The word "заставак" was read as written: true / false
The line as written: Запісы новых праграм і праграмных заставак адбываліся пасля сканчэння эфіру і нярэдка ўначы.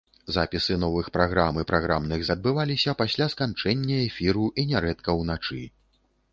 false